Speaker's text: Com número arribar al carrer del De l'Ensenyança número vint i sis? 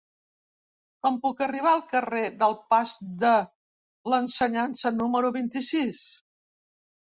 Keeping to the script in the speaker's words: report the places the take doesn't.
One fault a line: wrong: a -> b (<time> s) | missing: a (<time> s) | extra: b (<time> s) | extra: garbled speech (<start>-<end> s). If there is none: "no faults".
wrong: número -> puc (1.2 s)
extra: Pas (2.8 s)